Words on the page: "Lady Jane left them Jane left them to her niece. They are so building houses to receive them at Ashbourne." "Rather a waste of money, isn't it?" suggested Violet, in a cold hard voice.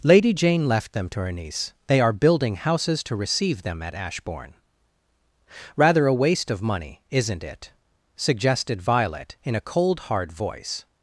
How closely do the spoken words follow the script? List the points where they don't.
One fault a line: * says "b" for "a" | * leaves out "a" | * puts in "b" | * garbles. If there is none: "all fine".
* leaves out "Jane left them"
* leaves out "so"